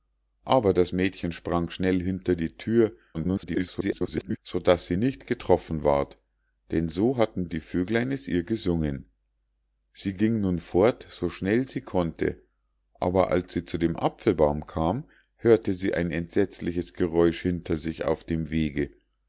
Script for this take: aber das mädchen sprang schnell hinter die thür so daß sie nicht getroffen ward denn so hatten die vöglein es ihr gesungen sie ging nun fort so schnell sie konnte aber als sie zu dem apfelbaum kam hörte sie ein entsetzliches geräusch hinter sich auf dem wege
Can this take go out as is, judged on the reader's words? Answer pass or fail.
fail